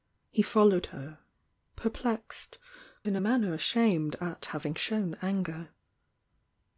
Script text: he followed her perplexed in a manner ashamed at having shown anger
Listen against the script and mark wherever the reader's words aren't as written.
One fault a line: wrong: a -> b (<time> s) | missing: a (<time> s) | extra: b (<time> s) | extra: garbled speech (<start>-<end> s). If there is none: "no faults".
no faults